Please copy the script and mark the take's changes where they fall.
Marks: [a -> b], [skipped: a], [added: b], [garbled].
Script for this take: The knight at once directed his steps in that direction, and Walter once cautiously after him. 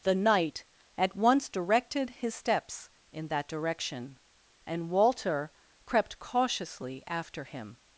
The knight at once directed his steps in that direction, and Walter [once -> crept] cautiously after him.